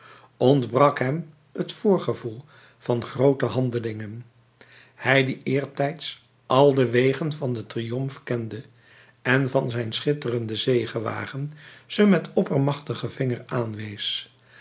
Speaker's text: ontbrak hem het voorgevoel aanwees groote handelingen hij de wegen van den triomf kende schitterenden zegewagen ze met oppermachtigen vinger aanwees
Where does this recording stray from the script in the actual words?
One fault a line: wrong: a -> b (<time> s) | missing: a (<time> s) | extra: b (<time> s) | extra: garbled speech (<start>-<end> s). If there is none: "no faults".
wrong: aanwees -> van (2.8 s)
extra: die eertijds al (5.2 s)
extra: en van zijn (9.2 s)